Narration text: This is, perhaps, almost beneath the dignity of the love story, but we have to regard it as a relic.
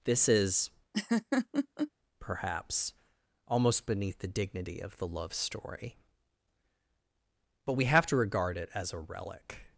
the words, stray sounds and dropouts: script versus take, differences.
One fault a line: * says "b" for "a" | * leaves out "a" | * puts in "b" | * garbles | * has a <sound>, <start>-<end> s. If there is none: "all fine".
* has a laugh, 0.9-1.9 s